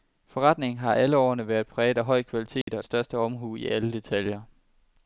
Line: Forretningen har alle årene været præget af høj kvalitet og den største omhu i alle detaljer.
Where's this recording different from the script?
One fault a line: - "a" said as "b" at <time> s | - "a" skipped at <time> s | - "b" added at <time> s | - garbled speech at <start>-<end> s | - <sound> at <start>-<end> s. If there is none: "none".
- dropout at 2.6-2.7 s
- "den" skipped at 2.8 s